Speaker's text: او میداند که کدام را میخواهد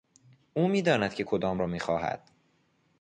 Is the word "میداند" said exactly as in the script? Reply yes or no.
yes